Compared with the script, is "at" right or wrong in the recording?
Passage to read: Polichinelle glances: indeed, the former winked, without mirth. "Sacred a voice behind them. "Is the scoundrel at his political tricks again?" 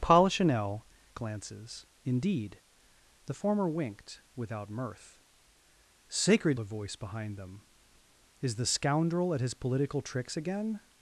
right